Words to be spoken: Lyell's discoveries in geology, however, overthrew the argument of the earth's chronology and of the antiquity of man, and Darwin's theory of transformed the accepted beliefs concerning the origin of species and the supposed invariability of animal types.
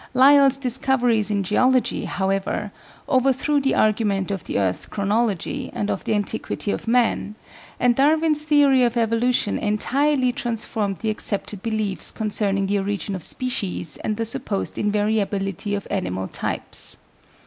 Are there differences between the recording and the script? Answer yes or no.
yes